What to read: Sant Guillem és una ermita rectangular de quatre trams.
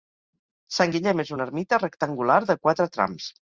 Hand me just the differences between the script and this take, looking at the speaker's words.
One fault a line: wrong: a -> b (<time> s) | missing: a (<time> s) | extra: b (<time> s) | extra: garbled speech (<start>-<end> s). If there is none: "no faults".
no faults